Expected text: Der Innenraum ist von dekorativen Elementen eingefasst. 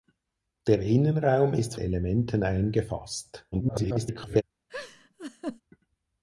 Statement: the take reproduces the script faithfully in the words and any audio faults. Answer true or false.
false